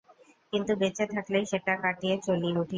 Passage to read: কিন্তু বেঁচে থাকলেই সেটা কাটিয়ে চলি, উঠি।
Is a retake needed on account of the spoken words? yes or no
no